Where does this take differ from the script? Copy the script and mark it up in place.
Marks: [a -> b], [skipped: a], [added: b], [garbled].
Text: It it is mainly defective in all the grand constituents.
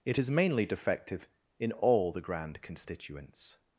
It [skipped: it] is mainly defective in all the grand constituents.